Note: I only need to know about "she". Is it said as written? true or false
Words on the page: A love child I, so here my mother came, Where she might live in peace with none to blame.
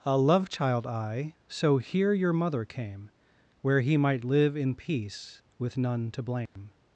false